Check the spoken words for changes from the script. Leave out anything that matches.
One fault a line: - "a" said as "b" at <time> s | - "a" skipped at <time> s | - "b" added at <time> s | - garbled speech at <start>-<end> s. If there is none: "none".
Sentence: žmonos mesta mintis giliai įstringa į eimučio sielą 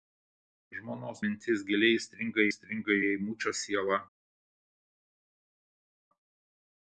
- "mesta" skipped at 1.2 s
- "įstringa" added at 2.5 s